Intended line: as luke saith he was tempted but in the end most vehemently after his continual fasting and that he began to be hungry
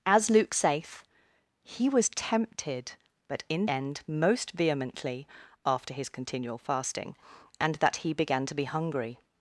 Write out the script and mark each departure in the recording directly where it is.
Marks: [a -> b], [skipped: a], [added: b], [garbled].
as luke saith he was tempted but in [skipped: the] end most vehemently after his continual fasting and that he began to be hungry